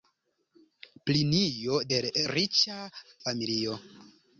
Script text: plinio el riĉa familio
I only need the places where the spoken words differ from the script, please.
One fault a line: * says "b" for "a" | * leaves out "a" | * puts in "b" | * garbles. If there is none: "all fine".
all fine